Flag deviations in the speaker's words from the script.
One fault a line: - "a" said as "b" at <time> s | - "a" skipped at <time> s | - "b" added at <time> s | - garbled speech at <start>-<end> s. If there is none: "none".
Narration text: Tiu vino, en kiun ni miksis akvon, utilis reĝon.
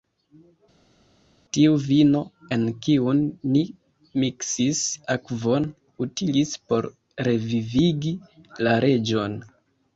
- "por revivigi la" added at 6.7 s